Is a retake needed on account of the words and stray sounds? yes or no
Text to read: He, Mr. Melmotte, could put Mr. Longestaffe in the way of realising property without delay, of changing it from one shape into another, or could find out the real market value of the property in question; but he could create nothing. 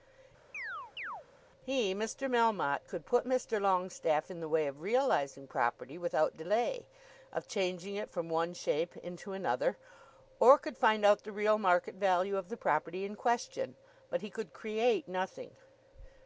yes